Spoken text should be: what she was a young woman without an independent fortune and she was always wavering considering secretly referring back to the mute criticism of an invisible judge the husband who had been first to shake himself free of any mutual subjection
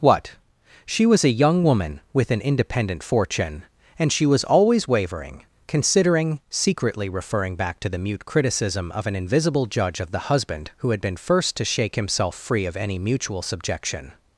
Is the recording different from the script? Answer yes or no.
yes